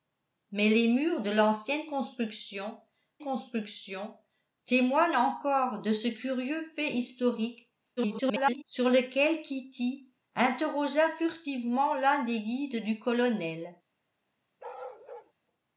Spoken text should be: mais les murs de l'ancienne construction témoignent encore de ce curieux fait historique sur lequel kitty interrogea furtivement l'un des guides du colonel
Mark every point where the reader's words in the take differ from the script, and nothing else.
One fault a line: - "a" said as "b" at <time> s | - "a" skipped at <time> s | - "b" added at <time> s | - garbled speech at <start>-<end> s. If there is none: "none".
- "construction" added at 3.2 s
- garbled speech at 8.0-8.6 s